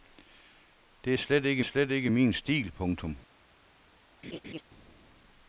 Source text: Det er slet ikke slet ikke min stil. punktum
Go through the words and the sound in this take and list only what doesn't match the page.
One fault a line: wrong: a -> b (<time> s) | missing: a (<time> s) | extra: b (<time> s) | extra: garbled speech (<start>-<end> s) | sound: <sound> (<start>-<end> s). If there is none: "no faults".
sound: laugh (4.2-4.6 s)